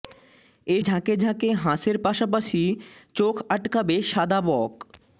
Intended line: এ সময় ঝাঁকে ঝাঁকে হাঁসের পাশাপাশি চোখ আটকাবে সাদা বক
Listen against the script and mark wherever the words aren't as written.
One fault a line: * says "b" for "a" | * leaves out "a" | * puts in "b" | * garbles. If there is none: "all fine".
* leaves out "সময়"